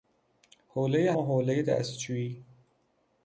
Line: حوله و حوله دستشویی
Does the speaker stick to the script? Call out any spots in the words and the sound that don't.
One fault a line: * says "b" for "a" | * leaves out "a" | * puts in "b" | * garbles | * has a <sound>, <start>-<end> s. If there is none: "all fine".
all fine